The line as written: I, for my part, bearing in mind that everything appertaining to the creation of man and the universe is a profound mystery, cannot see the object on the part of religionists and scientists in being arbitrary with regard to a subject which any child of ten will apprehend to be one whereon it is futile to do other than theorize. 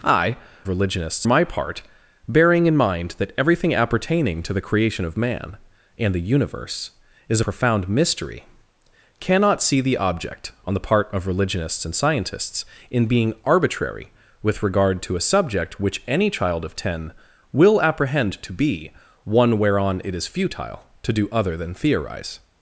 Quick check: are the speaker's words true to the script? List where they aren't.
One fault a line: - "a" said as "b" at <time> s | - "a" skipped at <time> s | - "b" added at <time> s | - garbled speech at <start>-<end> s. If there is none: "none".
- "for" said as "religionists" at 0.7 s
- "a" skipped at 7.4 s